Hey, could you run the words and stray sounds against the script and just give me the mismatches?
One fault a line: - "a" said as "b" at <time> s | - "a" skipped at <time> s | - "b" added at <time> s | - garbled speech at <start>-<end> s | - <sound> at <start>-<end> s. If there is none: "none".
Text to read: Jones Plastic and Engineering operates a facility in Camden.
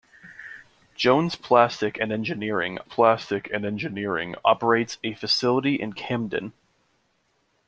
- "Plastic and Engineering" added at 2.8 s